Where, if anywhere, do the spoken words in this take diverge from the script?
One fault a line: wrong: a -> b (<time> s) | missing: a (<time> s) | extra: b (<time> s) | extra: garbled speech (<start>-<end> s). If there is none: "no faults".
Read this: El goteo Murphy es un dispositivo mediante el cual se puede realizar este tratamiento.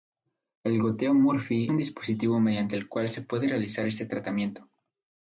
missing: es (1.7 s)